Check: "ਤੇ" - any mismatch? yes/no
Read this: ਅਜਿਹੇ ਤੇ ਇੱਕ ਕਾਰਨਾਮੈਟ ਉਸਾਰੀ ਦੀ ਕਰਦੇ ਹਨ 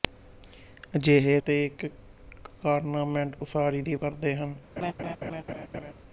no